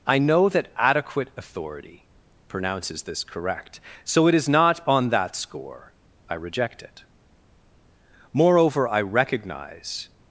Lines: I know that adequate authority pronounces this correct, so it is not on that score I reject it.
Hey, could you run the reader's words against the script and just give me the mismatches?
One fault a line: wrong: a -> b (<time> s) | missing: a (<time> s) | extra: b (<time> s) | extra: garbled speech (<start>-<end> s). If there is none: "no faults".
extra: Moreover I recognize (8.3 s)